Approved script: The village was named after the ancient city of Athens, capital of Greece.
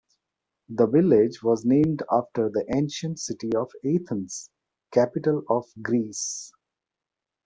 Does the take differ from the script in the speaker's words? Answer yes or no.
no